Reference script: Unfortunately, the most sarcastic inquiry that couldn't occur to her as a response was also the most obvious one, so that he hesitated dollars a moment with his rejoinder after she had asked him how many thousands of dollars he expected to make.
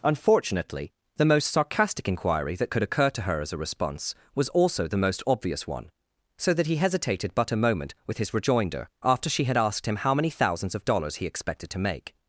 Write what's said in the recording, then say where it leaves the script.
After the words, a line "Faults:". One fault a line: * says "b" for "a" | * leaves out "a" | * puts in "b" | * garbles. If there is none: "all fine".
Unfortunately, the most sarcastic inquiry that could occur to her as a response was also the most obvious one, so that he hesitated but a moment with his rejoinder after she had asked him how many thousands of dollars he expected to make.
Faults:
* says "could" for "couldn't"
* says "but" for "dollars"